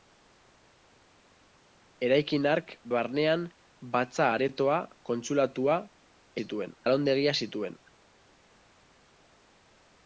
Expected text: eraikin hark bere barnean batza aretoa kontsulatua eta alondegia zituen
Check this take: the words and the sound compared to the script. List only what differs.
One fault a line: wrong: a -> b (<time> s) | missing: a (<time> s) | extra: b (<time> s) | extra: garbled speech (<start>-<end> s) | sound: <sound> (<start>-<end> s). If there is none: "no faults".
missing: bere (2.7 s)
wrong: eta -> zituen (6.4 s)